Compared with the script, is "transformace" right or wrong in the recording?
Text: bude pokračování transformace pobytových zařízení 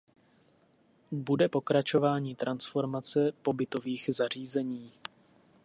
right